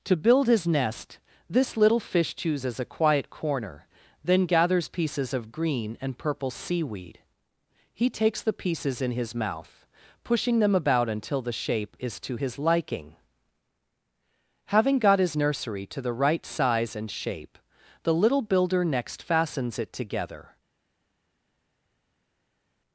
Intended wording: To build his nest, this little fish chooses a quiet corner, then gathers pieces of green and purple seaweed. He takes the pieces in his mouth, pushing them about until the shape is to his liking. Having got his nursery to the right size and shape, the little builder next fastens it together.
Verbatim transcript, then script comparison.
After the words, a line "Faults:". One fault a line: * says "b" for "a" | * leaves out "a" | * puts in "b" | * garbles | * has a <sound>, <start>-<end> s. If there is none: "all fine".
To build his nest, this little fish chooses a quiet corner, then gathers pieces of green and purple seaweed. He takes the pieces in his mouth, pushing them about until the shape is to his liking. Having got his nursery to the right size and shape, the little builder next fastens it together.
Faults:
all fine